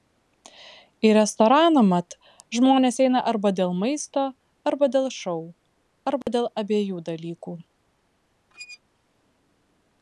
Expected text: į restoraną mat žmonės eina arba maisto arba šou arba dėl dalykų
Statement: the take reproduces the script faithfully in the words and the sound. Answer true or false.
false